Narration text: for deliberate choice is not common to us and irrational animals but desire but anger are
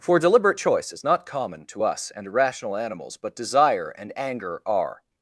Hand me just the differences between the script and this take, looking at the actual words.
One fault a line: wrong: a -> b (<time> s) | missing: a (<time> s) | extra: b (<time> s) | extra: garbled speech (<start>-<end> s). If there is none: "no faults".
wrong: but -> and (3.9 s)